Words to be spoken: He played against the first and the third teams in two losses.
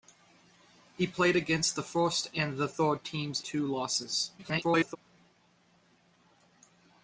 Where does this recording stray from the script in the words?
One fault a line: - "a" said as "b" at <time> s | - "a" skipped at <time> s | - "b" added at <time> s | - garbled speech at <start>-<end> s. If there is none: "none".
- "in" skipped at 3.5 s
- garbled speech at 4.4-5.0 s